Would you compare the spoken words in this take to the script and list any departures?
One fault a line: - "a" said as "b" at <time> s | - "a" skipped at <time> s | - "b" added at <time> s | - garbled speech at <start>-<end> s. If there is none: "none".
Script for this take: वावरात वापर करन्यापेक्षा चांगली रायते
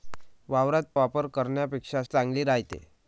none